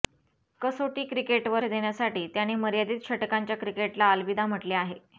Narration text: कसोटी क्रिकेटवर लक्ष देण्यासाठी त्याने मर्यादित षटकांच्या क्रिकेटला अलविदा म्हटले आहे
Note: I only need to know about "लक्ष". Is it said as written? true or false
false